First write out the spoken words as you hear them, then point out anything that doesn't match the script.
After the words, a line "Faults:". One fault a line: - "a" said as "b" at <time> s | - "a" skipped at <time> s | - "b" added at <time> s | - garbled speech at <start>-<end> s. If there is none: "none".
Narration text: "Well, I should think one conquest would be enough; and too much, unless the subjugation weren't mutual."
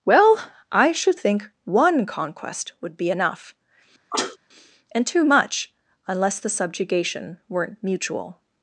"Well, I should think one conquest would be enough; and too much, unless the subjugation weren't mutual."
Faults:
none